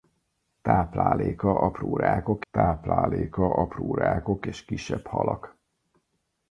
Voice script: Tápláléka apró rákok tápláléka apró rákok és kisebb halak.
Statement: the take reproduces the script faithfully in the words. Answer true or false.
true